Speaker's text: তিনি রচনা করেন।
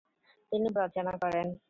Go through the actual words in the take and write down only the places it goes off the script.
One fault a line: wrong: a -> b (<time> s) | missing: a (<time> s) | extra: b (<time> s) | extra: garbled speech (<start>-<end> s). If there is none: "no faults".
no faults